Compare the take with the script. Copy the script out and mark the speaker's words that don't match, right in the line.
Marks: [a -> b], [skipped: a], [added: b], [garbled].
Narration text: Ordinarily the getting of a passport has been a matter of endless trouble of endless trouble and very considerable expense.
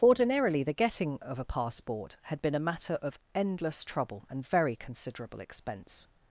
Ordinarily the getting of a passport [has -> had] been a matter of endless trouble [skipped: of endless trouble] and very considerable expense.